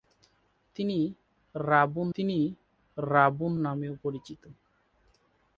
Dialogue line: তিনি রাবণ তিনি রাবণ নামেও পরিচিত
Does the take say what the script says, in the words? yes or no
yes